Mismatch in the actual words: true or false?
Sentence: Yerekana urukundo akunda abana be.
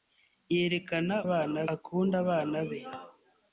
true